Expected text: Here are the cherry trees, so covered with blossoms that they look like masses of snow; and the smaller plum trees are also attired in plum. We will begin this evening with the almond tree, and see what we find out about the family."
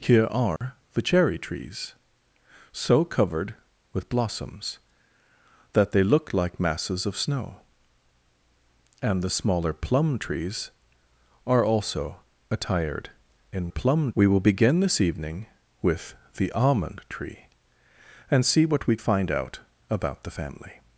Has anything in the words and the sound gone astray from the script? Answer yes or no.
yes